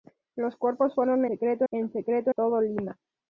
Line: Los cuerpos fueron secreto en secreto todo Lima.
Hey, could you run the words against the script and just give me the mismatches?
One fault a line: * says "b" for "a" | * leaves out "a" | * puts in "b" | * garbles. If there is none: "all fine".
all fine